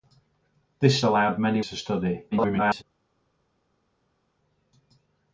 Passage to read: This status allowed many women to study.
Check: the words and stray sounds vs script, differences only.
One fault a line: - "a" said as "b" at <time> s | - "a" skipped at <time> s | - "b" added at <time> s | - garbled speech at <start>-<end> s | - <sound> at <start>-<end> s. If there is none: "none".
- "status" skipped at 1.0 s
- "women" skipped at 1.6 s
- garbled speech at 2.3-2.8 s